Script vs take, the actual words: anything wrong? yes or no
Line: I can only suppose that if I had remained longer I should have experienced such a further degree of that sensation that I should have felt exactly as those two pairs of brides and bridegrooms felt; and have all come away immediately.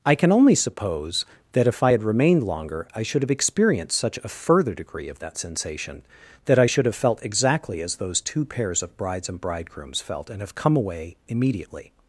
yes